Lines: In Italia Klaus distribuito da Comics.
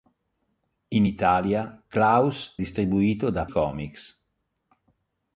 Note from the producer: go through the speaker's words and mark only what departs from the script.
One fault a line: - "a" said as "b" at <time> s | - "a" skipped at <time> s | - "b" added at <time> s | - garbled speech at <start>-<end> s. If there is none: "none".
none